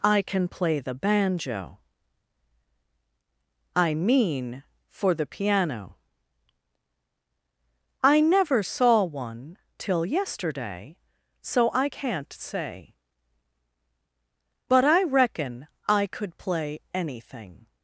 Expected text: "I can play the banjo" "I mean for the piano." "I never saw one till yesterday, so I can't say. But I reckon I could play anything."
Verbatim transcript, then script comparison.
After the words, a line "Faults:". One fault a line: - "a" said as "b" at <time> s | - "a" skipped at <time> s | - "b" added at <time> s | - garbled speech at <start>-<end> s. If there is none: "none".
"I can play the banjo" "I mean for the piano." "I never saw one till yesterday, so I can't say. But I reckon I could play anything."
Faults:
none